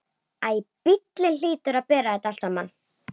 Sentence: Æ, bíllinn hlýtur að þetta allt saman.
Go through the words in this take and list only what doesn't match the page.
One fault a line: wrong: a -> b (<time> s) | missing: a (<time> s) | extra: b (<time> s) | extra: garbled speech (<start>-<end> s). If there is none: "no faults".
extra: bera (1.9 s)